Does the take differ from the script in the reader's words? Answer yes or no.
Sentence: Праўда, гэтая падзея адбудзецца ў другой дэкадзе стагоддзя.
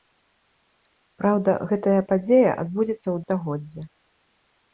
yes